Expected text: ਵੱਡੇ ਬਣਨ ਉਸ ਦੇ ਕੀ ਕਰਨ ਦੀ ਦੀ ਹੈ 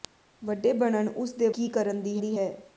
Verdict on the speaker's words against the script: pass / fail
pass